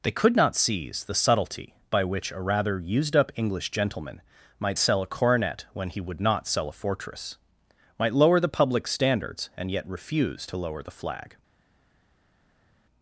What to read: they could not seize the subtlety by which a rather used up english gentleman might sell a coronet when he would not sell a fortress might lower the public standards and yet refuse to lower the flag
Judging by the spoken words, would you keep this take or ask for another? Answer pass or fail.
pass